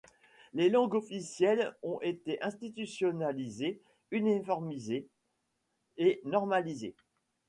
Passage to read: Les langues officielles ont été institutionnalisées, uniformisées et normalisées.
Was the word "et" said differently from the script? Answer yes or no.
no